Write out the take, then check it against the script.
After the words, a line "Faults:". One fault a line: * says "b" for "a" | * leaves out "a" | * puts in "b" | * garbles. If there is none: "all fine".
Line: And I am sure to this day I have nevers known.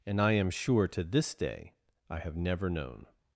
And I am sure to this day I have never known.
Faults:
* says "never" for "nevers"